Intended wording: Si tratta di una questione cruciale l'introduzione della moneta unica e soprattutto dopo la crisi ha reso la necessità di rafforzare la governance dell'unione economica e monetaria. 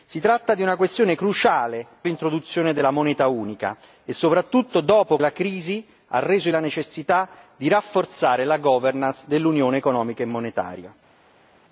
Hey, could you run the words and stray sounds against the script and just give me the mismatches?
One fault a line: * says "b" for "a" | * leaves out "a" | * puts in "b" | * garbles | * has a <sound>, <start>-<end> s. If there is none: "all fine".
all fine